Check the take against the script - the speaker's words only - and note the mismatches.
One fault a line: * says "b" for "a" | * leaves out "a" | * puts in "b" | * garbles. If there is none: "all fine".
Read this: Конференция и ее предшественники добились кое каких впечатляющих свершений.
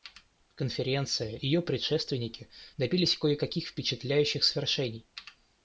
all fine